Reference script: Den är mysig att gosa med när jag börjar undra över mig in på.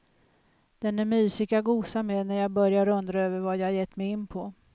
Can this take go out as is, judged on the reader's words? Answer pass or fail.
fail